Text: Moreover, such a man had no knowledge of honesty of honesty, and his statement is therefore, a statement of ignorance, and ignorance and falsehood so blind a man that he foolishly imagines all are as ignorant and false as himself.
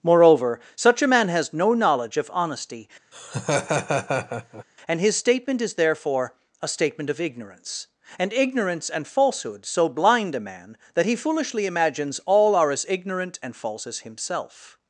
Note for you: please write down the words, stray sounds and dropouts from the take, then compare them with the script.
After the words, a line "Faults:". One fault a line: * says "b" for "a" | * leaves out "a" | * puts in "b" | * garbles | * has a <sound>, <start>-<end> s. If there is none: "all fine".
Moreover, such a man has no knowledge of honesty, and his statement is therefore, a statement of ignorance, and ignorance and falsehood so blind a man that he foolishly imagines all are as ignorant and false as himself.
Faults:
* says "has" for "had"
* leaves out "of honesty"
* has a laugh, 3.1-4.6 s